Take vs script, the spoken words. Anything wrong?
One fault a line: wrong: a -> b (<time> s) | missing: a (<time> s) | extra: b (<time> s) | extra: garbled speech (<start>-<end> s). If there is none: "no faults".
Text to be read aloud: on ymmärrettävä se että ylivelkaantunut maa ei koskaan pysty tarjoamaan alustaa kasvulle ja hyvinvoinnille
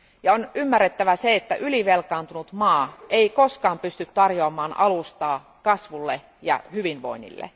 no faults